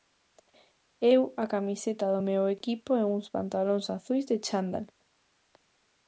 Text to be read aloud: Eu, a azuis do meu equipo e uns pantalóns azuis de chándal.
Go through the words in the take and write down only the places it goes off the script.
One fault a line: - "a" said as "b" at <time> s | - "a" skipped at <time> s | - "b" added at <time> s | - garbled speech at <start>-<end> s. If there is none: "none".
- "azuis" said as "camiseta" at 1.5 s